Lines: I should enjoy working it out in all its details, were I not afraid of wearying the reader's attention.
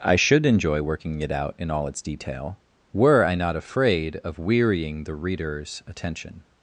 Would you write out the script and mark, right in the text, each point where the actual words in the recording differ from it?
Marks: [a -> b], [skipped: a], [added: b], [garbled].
I should enjoy working it out in all its [details, -> detail] were I not afraid of wearying the reader's attention.